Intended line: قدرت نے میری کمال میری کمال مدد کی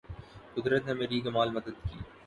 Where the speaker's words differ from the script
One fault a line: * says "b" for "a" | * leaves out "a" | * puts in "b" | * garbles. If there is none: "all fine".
* leaves out "میری کمال"